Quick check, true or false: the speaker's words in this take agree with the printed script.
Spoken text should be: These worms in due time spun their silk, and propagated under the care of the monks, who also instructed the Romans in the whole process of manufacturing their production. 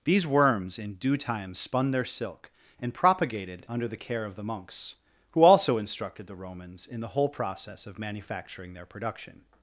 true